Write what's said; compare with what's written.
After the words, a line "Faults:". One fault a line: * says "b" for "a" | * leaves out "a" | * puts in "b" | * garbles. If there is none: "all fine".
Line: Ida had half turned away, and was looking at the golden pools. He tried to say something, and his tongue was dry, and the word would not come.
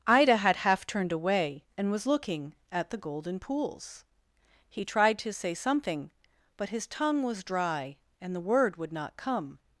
Ida had half turned away, and was looking at the golden pools. He tried to say something, but his tongue was dry, and the word would not come.
Faults:
* says "but" for "and"